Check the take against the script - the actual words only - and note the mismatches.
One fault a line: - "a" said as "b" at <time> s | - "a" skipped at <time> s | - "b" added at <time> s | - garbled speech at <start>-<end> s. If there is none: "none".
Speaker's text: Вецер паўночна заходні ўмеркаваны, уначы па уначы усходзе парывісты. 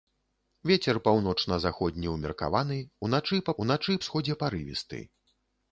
none